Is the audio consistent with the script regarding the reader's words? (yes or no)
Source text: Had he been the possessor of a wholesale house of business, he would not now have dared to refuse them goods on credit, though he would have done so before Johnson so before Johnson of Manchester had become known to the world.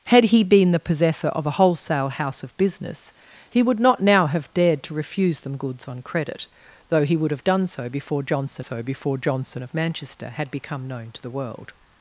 yes